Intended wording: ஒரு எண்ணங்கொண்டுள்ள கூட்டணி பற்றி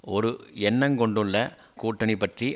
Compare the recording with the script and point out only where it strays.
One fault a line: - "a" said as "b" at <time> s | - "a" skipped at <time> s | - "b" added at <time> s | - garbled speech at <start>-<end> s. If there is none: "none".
none